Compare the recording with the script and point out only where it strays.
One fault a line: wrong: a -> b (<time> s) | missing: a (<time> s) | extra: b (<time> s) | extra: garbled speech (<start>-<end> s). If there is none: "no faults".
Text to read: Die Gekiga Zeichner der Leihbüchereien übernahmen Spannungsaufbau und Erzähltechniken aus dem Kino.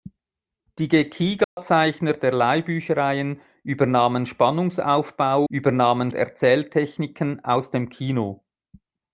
wrong: und -> übernahmen (5.5 s)